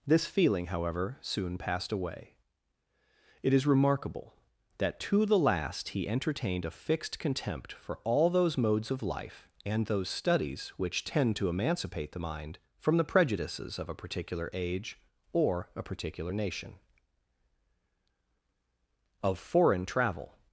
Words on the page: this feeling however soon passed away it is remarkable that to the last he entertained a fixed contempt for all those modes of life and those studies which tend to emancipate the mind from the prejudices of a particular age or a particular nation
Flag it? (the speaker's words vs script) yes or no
yes